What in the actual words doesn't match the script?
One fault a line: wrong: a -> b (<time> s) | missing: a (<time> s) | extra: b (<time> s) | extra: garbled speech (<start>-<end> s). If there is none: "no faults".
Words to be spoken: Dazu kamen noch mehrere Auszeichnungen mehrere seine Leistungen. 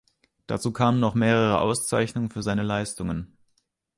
wrong: mehrere -> für (2.3 s)